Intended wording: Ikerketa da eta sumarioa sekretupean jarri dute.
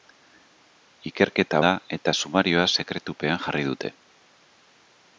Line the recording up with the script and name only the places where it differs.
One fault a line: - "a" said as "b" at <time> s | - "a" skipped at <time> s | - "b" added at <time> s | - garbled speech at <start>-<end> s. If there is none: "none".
none